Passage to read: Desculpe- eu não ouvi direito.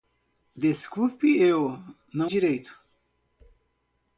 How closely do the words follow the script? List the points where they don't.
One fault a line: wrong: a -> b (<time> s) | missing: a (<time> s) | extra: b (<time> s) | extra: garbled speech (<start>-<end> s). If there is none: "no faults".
missing: ouvi (2.3 s)